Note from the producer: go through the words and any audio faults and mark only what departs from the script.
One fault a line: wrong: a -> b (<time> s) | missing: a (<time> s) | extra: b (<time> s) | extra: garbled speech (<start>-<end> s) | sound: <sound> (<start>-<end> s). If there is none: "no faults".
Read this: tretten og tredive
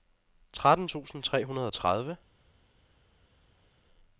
extra: tusind tre hundrede (0.8 s)